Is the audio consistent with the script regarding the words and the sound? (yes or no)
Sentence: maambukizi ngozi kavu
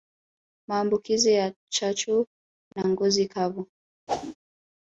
no